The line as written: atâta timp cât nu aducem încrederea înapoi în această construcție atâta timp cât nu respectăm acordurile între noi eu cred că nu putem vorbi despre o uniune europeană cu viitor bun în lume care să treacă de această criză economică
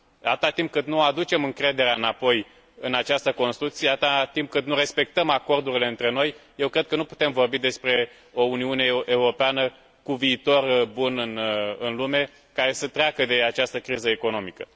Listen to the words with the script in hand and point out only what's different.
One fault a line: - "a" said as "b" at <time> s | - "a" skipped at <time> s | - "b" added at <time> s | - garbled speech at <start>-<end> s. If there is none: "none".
none